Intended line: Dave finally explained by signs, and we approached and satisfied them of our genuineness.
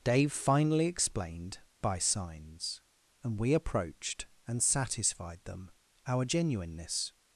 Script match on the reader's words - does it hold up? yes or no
no